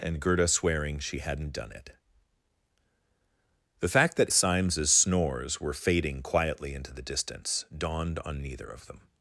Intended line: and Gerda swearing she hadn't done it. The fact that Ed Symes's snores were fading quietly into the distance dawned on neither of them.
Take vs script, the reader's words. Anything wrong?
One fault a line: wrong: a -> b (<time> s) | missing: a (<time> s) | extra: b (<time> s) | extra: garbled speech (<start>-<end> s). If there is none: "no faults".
missing: Ed (4.3 s)